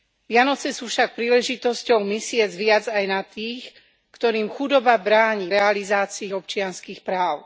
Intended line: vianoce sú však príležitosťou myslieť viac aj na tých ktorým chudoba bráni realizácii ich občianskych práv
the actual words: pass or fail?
pass